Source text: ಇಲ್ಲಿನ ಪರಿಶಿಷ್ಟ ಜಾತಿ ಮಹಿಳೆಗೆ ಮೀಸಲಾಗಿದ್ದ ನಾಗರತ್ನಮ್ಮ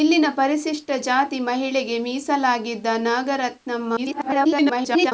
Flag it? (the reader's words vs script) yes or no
yes